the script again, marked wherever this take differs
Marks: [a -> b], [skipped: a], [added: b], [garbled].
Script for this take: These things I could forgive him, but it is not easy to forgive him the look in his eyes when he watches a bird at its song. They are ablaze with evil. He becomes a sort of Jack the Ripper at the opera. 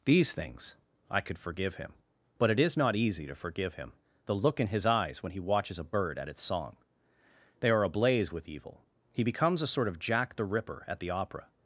These things I could forgive him, but it is not easy to forgive him the look in his eyes when he watches a bird at its song. They are ablaze with evil. He becomes a sort of Jack the Ripper at the opera.